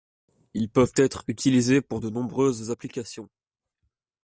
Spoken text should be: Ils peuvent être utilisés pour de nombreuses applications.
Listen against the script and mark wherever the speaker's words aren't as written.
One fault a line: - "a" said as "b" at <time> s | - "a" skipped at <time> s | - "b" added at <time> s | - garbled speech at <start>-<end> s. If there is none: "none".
none